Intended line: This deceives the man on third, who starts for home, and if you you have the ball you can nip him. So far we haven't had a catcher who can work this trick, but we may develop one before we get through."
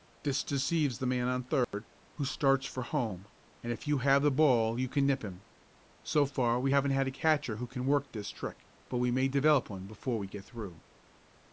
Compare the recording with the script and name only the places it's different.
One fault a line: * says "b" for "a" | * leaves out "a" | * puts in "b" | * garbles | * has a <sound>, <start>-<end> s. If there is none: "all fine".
* has a dropout, 1.6-1.7 s
* leaves out "you"